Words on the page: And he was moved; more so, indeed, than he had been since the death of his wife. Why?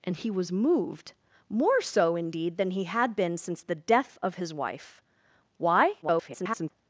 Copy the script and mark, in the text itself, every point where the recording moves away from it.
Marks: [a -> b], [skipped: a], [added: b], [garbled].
And he was moved; more so, indeed, than he had been since the death of his wife. Why? [garbled]